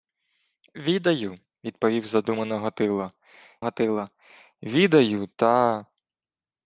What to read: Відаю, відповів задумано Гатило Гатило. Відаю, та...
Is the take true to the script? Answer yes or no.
yes